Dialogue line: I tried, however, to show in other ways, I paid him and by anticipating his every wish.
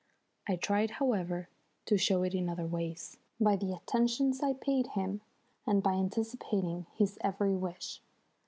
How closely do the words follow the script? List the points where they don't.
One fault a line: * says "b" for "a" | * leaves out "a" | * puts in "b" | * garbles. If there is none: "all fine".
* puts in "it"
* puts in "by the attentions"